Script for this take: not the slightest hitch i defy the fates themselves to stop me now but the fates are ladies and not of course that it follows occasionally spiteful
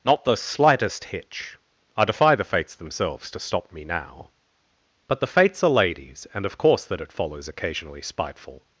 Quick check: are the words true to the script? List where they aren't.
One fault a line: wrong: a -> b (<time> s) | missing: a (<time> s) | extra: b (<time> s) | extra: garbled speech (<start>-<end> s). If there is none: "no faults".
missing: not (6.5 s)